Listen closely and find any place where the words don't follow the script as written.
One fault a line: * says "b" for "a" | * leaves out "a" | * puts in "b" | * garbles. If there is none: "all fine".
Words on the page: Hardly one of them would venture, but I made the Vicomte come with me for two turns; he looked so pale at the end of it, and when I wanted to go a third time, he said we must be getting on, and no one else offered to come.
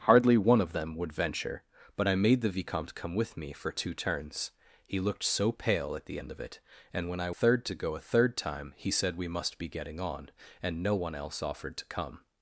* says "third" for "wanted"